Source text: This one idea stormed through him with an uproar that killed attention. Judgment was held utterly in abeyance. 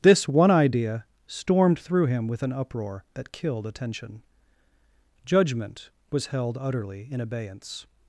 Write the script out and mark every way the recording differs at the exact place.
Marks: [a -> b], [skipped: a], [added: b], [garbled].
This one idea stormed through him with an uproar that killed attention. Judgment was held utterly in abeyance.